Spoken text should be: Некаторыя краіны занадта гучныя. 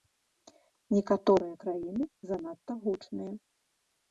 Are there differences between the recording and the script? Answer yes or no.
no